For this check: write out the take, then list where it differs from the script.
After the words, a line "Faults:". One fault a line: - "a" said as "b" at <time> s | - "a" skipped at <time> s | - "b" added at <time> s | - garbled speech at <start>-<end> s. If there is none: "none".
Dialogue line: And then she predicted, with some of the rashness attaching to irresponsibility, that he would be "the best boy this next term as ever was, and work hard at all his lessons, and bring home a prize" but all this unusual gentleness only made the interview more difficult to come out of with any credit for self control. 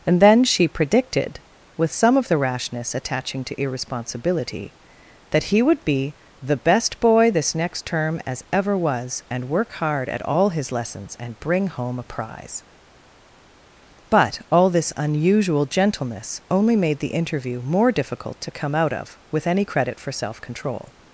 And then she predicted, with some of the rashness attaching to irresponsibility, that he would be "the best boy this next term as ever was, and work hard at all his lessons, and bring home a prize" but all this unusual gentleness only made the interview more difficult to come out of with any credit for self control.
Faults:
none